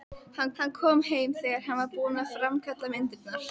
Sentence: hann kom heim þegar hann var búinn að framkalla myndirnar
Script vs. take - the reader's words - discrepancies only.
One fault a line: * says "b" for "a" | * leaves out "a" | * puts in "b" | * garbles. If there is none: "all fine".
* puts in "hann"